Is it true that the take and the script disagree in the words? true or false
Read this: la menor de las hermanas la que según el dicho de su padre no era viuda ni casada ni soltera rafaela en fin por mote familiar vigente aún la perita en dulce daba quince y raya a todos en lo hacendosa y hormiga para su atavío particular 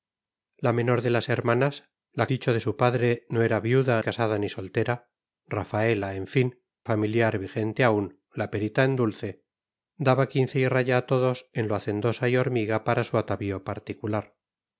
true